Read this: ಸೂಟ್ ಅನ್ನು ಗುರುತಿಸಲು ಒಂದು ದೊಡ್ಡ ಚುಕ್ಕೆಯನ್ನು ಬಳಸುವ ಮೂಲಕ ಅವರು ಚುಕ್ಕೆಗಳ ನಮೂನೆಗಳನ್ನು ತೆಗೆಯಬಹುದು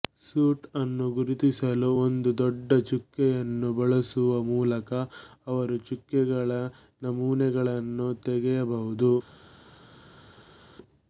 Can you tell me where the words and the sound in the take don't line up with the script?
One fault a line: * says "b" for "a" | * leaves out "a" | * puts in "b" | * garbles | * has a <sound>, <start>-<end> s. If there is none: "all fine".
all fine